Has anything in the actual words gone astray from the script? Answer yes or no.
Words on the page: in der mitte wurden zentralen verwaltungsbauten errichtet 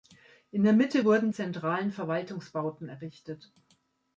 no